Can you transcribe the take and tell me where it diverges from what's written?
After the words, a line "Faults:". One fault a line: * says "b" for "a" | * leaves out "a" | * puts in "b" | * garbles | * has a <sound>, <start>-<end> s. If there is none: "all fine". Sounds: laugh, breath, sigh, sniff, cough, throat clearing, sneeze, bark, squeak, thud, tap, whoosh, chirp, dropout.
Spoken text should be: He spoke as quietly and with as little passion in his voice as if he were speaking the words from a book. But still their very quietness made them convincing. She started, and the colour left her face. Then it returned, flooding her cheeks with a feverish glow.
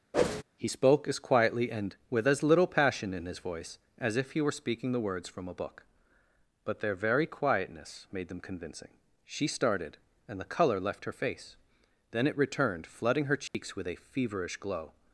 He spoke as quietly and with as little passion in his voice as if he were speaking the words from a book. But their very quietness made them convincing. She started, and the colour left her face. Then it returned, flooding her cheeks with a feverish glow.
Faults:
* has a whoosh, 0.1-0.4 s
* leaves out "still"
* has a dropout, 13.5-13.5 s